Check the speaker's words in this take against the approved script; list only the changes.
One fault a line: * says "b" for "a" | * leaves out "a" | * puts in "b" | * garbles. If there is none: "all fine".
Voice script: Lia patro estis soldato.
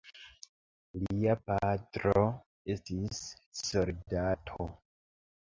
all fine